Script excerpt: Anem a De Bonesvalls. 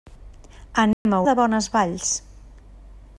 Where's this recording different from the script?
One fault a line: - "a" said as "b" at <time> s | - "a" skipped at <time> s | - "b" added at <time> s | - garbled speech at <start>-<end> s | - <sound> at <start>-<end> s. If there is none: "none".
- dropout at 0.9-1.1 s